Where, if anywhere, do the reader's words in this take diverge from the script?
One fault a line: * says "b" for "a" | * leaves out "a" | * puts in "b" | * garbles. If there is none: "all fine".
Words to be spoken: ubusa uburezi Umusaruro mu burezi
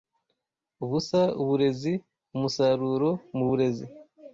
all fine